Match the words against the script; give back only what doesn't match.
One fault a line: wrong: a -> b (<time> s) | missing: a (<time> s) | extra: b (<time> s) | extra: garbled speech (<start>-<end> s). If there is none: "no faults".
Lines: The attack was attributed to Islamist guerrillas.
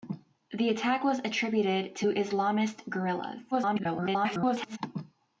extra: garbled speech (3.5-4.8 s)